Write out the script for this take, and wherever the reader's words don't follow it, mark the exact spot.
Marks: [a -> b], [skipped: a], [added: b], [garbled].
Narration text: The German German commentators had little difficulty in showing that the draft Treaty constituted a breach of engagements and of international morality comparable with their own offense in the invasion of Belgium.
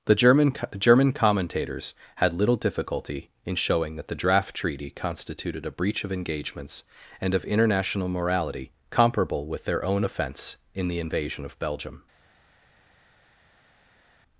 The German German commentators had little difficulty in showing that the draft Treaty constituted a breach of engagements and of international morality comparable with their own offense in the invasion of Belgium.